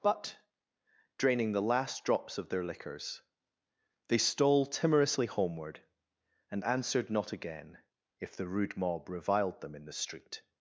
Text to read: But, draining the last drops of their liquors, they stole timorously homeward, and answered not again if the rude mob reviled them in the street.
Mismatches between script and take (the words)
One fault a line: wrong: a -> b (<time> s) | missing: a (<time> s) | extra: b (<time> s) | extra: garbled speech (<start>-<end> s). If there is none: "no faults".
no faults